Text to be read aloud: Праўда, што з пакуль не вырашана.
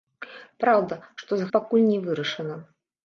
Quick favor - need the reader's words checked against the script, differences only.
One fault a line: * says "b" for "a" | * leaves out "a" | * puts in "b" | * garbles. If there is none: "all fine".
all fine